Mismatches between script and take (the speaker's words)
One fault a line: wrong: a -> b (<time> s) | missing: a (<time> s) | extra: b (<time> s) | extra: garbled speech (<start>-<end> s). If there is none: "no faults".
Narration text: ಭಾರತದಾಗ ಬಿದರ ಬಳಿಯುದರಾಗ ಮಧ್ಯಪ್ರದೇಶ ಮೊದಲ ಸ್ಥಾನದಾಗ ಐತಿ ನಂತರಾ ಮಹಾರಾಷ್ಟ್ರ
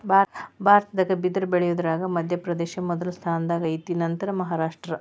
no faults